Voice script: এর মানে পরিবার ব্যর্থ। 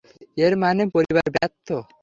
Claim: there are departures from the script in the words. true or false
false